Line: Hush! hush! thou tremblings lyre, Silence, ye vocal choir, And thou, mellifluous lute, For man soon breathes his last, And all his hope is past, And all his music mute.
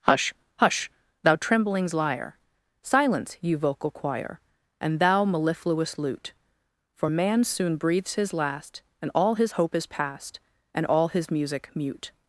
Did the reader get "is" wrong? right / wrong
right